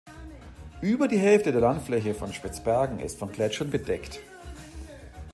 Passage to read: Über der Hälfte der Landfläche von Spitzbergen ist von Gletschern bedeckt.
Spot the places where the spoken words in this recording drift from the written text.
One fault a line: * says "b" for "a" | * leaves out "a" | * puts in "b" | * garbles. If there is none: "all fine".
* says "die" for "der"